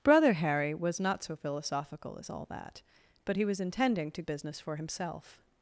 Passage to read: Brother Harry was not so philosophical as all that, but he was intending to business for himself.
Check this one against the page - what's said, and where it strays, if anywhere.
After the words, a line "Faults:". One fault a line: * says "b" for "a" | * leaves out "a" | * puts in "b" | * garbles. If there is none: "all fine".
Brother Harry was not so philosophical as all that, but he was intending to business for himself.
Faults:
all fine